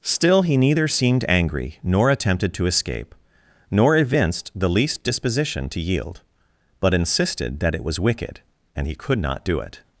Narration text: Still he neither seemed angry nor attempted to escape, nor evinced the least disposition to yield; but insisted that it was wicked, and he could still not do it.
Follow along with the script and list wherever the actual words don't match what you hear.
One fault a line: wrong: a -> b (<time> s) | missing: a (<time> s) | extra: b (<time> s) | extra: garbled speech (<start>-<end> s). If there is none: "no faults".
missing: still (9.2 s)